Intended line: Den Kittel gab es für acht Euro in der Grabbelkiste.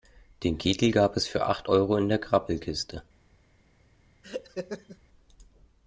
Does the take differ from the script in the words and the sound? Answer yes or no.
yes